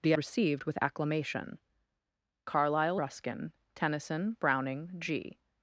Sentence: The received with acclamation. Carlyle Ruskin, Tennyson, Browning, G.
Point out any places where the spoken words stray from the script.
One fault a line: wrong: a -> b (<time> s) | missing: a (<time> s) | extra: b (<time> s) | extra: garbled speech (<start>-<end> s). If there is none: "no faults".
no faults